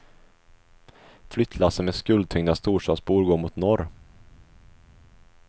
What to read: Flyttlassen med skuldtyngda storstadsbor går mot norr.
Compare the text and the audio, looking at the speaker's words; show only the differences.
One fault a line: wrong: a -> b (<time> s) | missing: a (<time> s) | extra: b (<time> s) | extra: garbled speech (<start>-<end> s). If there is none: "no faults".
no faults